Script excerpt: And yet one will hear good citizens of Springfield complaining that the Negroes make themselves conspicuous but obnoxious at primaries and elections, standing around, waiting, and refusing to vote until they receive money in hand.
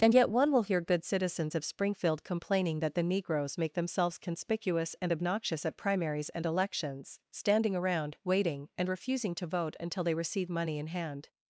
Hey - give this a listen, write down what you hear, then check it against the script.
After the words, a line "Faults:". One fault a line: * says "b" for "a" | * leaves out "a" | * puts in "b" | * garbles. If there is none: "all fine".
And yet one will hear good citizens of Springfield complaining that the Negroes make themselves conspicuous and obnoxious at primaries and elections, standing around, waiting, and refusing to vote until they receive money in hand.
Faults:
* says "and" for "but"